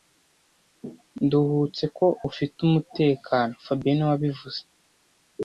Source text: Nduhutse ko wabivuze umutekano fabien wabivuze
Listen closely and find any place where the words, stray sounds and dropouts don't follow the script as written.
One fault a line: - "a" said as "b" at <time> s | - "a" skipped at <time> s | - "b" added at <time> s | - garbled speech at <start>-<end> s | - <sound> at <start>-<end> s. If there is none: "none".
- "wabivuze" said as "ufite" at 2.3 s
- "niwe" added at 4.0 s